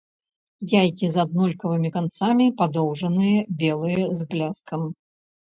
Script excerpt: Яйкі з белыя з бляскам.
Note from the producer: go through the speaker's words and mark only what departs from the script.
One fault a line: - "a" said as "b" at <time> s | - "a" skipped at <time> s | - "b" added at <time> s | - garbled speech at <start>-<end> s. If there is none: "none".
- "аднолькавымі канцамі падоўжаныя" added at 1.2 s